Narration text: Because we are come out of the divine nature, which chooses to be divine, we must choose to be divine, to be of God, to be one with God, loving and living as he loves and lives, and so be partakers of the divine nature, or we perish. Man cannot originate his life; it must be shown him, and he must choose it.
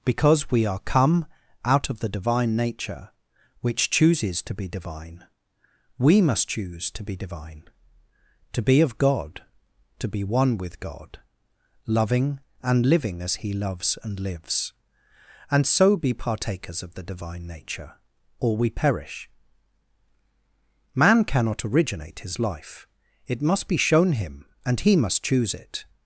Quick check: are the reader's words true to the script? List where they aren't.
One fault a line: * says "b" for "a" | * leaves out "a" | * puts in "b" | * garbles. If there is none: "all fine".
all fine